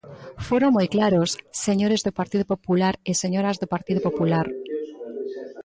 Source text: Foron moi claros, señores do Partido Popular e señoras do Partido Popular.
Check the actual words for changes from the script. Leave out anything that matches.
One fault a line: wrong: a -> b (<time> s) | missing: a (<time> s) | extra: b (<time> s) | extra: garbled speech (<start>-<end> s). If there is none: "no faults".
no faults